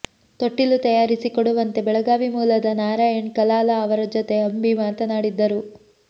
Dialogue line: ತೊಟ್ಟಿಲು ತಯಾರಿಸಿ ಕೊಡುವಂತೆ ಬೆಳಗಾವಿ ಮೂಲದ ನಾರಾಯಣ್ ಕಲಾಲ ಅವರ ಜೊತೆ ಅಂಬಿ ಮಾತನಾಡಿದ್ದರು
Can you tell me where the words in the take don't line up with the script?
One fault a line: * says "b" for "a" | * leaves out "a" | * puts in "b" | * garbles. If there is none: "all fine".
all fine